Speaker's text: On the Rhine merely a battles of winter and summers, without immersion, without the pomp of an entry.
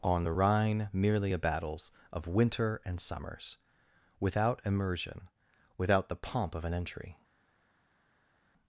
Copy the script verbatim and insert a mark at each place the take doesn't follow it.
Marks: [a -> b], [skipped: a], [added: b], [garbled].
On the Rhine merely a battles of winter and summers, without immersion, without the pomp of an entry.